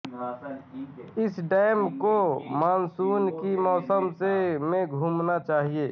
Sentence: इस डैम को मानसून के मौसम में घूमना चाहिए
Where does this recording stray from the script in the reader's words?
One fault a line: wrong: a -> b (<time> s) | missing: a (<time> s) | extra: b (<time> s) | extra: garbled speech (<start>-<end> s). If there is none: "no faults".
no faults